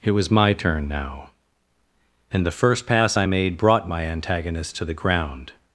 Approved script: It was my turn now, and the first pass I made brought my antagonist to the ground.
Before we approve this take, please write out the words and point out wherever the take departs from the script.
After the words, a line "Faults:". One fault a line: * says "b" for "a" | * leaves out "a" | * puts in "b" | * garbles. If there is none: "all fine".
It was my turn now, and the first pass I made brought my antagonist to the ground.
Faults:
all fine